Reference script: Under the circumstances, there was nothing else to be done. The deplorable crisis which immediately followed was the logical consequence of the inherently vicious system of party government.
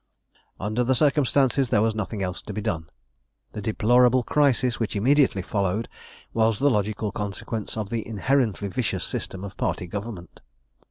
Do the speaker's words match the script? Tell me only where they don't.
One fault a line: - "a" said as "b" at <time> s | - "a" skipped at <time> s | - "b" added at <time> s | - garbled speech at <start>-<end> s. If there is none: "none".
none